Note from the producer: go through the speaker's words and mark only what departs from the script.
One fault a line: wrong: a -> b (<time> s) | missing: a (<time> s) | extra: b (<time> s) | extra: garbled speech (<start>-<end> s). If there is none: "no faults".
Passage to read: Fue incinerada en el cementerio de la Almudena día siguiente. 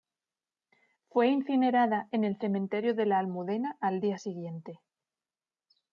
extra: al (3.8 s)